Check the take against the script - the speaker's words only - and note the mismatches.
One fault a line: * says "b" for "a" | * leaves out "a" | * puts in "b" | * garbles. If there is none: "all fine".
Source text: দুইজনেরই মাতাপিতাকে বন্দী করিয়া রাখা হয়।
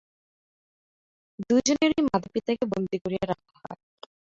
all fine